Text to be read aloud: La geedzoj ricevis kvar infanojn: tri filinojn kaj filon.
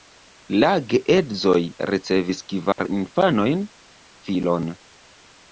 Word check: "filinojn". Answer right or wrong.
wrong